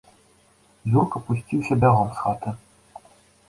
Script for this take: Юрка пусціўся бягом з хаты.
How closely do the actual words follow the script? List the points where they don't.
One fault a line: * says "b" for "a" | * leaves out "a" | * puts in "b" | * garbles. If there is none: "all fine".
all fine